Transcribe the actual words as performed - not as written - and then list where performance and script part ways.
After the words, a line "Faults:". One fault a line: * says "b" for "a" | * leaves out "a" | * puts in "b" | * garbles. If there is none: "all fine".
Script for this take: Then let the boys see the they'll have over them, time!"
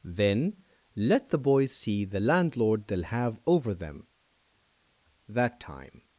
Then let the boys see the landlord they'll have over them, that time!"
Faults:
* puts in "landlord"
* puts in "that"